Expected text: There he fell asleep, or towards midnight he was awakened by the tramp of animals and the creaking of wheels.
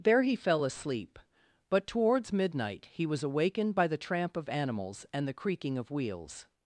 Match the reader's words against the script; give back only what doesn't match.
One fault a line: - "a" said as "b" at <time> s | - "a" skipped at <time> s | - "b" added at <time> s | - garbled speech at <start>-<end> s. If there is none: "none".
- "or" said as "but" at 1.7 s